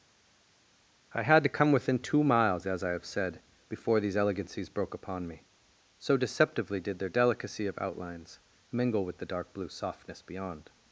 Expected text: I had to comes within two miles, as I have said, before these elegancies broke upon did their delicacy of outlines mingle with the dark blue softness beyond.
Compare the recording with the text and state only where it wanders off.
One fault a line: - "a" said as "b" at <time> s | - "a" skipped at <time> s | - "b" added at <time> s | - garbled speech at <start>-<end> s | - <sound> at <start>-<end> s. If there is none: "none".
- "comes" said as "come" at 1.5 s
- "me so deceptively" added at 5.3 s